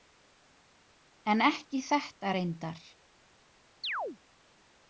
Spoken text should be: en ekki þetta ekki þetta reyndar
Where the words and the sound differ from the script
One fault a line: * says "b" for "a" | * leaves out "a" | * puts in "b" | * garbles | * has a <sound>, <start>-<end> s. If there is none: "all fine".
* leaves out "ekki þetta"
* has a chirp, 3.8-4.2 s